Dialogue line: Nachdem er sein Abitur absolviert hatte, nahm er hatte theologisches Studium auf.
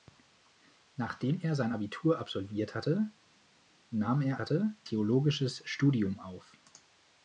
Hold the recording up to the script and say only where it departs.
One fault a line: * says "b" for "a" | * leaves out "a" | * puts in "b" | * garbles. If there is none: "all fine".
all fine